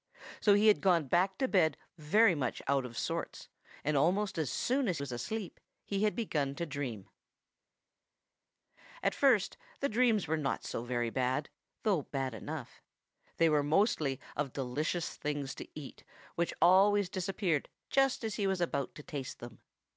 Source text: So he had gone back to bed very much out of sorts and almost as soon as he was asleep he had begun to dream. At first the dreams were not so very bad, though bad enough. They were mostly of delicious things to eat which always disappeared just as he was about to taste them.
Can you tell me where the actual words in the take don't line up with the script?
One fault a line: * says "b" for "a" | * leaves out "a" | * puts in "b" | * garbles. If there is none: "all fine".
* leaves out "he"